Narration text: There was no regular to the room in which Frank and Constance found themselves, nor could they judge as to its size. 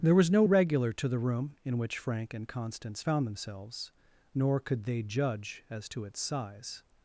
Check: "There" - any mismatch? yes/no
no